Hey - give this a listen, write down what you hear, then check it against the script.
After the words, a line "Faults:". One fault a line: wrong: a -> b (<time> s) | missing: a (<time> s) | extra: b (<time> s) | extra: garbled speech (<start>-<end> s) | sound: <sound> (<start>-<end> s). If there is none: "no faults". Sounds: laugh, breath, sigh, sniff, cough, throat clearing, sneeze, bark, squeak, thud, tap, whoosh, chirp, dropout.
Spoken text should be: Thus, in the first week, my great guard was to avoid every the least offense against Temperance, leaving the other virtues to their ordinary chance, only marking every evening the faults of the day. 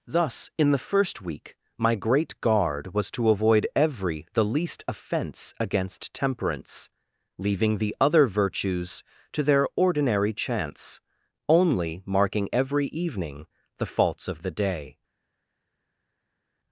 Thus, in the first week, my great guard was to avoid every the least offense against Temperance, leaving the other virtues to their ordinary chance, only marking every evening the faults of the day.
Faults:
no faults